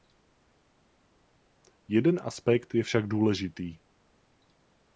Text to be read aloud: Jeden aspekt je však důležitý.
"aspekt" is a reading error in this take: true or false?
false